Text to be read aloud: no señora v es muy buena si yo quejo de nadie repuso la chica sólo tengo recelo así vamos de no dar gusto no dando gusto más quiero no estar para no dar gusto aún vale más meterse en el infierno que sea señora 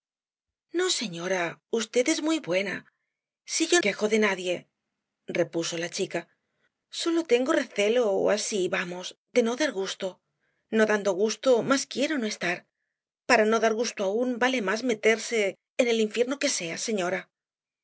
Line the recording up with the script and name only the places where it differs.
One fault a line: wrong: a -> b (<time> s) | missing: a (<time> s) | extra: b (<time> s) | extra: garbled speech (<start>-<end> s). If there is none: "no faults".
no faults